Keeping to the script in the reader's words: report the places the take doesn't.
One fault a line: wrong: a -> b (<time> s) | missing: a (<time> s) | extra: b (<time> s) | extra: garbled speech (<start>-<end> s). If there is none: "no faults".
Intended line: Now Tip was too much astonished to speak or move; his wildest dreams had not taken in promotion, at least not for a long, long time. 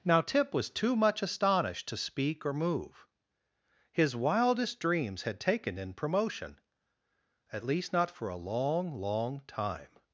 missing: not (5.4 s)